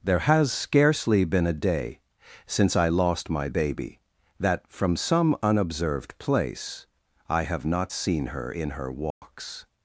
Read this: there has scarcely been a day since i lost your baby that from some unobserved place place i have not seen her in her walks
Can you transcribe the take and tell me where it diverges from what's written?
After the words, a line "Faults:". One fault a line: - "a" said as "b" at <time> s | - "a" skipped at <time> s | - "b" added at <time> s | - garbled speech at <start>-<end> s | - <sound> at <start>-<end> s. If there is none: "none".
there has scarcely been a day since i lost my baby that from some unobserved place i have not seen her in her walks
Faults:
- "your" said as "my" at 3.3 s
- "place" skipped at 6.8 s
- dropout at 9.1-9.2 s